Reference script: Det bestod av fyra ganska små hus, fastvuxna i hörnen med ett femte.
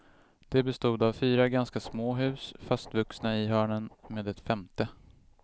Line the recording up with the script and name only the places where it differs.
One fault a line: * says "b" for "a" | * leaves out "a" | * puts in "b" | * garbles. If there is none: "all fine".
all fine